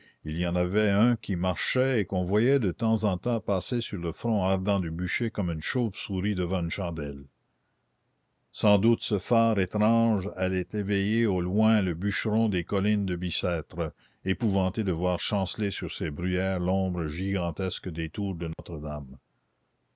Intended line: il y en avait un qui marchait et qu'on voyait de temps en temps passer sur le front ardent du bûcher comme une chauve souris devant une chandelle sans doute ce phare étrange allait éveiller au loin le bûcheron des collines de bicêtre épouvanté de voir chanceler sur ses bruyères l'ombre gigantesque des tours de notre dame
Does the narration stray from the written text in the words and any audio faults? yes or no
yes